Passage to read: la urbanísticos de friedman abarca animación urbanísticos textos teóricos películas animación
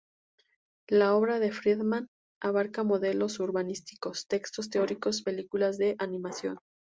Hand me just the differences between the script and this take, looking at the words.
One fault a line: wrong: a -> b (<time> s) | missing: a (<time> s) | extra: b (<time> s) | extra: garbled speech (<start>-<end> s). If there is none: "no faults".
wrong: urbanísticos -> obra (1.1 s)
wrong: animación -> modelos (2.8 s)
extra: de (5.8 s)